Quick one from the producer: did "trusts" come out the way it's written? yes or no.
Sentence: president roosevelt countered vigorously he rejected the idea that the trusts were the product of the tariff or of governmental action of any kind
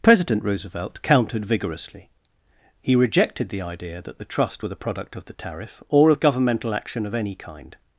no